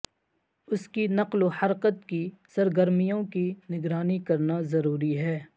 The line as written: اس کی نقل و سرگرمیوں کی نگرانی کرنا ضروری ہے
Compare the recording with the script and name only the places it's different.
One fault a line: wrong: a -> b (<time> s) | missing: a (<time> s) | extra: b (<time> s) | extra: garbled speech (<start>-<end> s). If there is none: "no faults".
extra: حرکت کی (1.6 s)